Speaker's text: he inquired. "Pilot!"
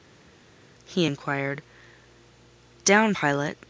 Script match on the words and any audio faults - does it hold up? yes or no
no